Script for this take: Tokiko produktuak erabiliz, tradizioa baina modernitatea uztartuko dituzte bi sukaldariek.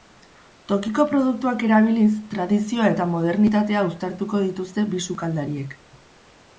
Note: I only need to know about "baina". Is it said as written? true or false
false